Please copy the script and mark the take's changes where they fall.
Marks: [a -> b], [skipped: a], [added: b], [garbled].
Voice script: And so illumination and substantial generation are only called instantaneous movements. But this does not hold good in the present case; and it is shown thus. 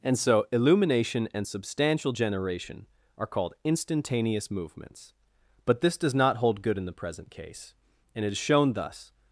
And so illumination and substantial generation are [skipped: only] called instantaneous movements. But this does not hold good in the present case; and it is shown thus.